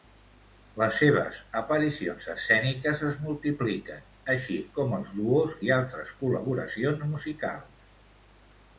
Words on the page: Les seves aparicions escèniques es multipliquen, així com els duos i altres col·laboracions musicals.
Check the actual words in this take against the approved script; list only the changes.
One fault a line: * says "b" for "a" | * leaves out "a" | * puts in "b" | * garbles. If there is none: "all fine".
all fine